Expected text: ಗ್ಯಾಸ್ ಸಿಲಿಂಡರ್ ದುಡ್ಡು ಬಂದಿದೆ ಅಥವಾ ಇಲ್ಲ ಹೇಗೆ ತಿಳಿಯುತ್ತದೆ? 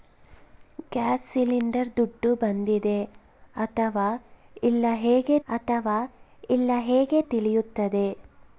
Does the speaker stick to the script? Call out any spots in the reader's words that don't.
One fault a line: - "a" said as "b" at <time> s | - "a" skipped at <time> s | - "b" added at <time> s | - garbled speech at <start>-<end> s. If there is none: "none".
- "ಅಥವಾ ಇಲ್ಲ ಹೇಗೆ" added at 5.5 s